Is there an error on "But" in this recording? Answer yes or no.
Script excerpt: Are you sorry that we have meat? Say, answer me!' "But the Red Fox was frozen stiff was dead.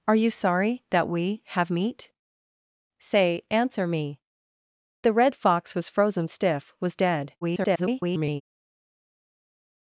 yes